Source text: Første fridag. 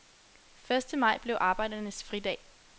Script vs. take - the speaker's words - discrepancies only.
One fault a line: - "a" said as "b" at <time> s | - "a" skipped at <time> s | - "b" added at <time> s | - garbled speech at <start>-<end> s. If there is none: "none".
- "maj blev arbejdernes" added at 1.0 s